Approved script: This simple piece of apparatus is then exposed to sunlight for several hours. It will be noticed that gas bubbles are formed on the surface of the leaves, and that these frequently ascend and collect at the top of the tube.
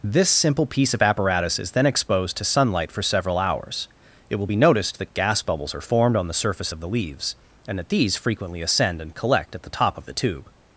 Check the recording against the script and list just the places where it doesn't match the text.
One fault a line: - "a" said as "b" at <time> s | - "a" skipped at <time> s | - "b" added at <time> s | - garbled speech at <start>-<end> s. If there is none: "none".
none